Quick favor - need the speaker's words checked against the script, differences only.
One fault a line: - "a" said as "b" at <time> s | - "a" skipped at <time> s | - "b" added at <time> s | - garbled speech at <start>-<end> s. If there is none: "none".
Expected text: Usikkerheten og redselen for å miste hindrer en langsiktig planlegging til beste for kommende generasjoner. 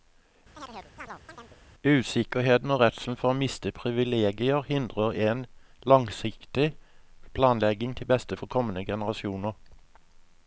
- "privilegier" added at 3.8 s